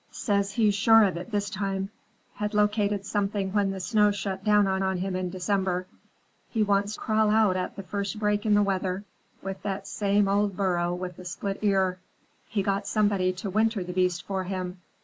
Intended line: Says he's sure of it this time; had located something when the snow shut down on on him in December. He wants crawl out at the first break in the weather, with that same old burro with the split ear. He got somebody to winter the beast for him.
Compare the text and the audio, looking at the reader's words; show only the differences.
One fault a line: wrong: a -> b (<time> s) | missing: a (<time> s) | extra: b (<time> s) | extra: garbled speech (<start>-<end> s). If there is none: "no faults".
no faults